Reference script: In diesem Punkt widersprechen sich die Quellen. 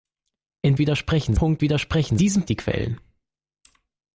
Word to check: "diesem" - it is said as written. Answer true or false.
false